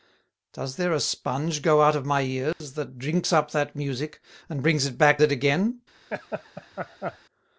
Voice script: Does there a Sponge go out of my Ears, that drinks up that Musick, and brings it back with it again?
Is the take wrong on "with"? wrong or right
wrong